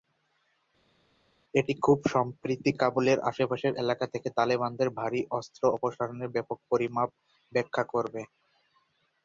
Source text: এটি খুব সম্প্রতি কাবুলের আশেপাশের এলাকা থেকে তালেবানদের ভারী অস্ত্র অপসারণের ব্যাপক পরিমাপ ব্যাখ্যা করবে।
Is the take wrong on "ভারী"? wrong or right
right